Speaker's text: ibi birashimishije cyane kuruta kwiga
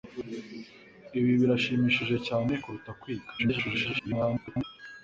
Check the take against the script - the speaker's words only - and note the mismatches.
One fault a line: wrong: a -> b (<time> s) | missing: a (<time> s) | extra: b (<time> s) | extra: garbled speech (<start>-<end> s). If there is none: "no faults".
extra: garbled speech (3.4-4.6 s)